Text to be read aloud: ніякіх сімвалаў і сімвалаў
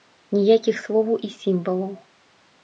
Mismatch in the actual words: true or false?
true